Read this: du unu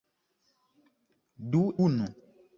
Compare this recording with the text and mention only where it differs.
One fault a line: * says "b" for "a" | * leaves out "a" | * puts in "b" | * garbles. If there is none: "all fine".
all fine